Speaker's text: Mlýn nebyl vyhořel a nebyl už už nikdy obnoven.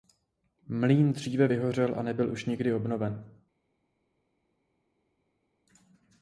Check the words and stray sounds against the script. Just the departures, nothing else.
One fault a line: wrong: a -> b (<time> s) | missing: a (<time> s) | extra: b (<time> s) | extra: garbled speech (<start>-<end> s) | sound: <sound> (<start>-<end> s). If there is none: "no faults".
wrong: nebyl -> dříve (1.1 s)
missing: už (2.4 s)